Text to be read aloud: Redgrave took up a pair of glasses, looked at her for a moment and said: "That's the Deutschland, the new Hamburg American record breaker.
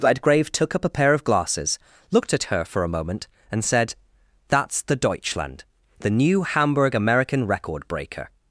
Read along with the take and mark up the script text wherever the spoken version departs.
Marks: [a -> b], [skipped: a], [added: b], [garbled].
Redgrave took up a pair of glasses, looked at her for a moment and said: "That's the Deutschland, the new Hamburg American record breaker.